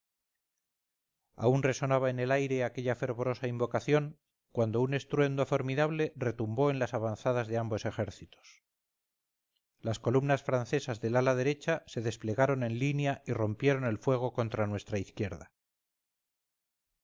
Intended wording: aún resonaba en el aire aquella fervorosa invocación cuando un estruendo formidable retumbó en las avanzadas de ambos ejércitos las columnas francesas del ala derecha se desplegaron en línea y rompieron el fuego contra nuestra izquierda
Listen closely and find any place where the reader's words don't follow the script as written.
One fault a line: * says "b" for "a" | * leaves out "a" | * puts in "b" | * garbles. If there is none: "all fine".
all fine